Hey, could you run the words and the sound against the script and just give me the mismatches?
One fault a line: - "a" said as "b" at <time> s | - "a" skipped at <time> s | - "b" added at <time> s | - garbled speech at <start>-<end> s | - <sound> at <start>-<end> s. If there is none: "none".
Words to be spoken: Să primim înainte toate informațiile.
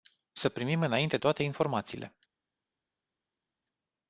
none